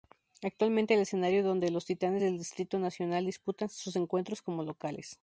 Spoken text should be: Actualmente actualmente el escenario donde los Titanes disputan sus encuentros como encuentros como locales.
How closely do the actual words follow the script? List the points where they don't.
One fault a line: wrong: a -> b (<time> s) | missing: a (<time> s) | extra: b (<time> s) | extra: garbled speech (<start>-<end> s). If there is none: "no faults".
missing: actualmente (0.9 s)
extra: del Distrito Nacional (2.2 s)
missing: encuentros como (4.6 s)